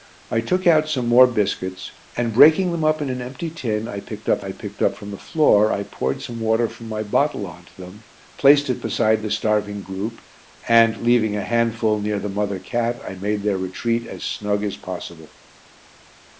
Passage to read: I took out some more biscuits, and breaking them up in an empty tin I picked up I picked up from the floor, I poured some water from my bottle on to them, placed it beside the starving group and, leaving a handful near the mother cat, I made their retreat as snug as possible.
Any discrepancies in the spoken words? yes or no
no